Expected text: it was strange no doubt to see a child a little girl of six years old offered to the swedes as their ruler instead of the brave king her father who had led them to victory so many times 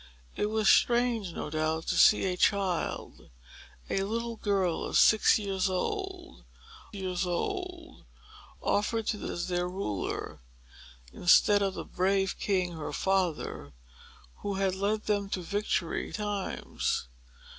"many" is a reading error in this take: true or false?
true